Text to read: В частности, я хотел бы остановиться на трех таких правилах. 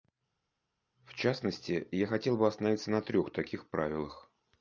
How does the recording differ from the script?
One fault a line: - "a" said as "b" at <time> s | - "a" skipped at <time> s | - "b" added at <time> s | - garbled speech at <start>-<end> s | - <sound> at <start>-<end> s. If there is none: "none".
none